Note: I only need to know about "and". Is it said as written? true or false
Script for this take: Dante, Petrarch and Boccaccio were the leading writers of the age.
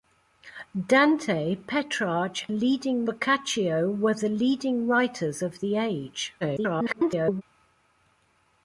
false